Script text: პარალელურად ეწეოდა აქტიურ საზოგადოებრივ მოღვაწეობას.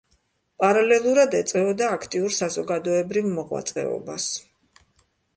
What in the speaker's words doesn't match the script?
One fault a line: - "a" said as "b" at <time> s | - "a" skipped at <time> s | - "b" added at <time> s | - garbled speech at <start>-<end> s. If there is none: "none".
none